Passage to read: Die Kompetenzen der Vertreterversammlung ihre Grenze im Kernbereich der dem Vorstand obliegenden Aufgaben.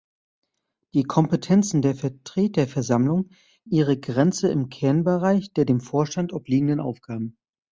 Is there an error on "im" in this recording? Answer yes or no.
no